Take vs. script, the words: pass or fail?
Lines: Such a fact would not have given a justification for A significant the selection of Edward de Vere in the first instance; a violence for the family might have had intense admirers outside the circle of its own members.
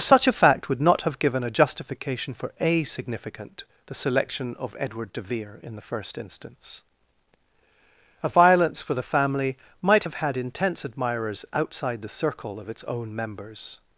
pass